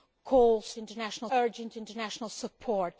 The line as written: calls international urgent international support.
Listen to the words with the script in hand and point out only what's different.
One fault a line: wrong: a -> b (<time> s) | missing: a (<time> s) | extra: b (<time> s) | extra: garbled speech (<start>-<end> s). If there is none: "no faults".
no faults